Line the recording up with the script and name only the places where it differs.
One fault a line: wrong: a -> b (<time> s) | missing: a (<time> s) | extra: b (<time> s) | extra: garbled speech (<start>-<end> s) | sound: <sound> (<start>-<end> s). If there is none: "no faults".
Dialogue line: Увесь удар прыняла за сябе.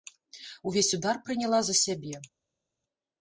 no faults